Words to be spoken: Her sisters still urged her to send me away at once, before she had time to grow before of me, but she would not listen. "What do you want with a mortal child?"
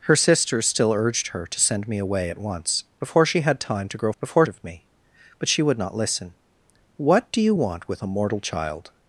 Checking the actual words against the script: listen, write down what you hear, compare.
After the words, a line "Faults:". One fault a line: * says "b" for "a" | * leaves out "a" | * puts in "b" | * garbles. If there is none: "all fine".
Her sisters still urged her to send me away at once, before she had time to grow before of me, but she would not listen. "What do you want with a mortal child?"
Faults:
all fine